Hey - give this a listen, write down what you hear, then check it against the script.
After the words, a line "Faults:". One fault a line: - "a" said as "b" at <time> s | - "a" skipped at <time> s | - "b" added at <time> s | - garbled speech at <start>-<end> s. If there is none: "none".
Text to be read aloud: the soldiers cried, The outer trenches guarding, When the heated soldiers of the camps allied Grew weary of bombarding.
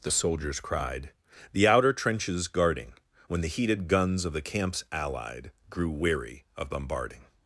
the soldiers cried, The outer trenches guarding, When the heated guns of the camps allied Grew weary of bombarding.
Faults:
- "soldiers" said as "guns" at 3.9 s